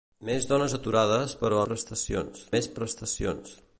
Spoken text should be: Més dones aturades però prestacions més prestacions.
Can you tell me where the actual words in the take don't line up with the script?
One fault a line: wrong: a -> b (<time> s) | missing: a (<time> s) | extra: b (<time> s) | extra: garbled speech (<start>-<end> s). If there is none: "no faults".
no faults